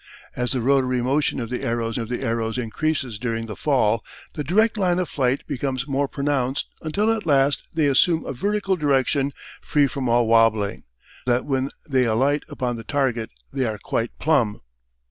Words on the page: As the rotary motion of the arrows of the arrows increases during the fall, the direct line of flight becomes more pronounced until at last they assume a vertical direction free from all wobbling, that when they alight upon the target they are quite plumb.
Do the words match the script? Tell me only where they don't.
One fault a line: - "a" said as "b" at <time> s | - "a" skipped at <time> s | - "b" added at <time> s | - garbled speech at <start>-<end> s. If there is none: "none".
none